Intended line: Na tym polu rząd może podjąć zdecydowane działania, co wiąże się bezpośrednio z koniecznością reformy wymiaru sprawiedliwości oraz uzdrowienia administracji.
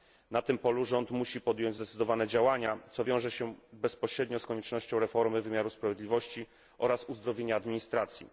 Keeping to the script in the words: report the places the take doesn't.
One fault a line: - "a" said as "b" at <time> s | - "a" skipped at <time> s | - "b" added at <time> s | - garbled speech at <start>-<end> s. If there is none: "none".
- "może" said as "musi" at 1.1 s